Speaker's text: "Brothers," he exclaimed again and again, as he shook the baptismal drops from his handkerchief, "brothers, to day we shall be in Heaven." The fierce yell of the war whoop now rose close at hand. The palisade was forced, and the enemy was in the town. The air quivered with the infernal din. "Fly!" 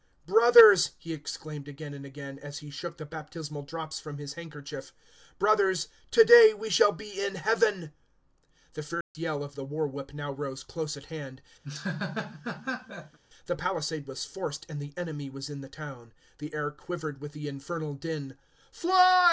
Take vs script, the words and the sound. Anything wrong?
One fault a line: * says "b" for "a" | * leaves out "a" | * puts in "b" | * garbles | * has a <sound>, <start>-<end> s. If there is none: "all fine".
* has a dropout, 9.0-9.1 s
* has a laugh, 11.6-13.2 s